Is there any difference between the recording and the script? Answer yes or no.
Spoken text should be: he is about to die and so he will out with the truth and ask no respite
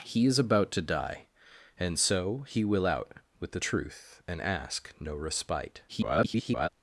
yes